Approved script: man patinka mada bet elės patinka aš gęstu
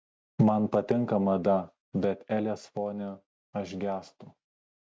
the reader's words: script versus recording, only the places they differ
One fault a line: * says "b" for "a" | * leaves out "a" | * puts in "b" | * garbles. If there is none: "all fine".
* says "fone" for "patinka"